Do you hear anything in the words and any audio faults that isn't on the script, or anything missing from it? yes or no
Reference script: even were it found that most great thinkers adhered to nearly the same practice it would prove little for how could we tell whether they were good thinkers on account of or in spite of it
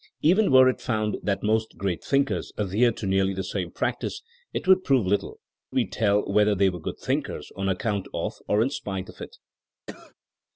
yes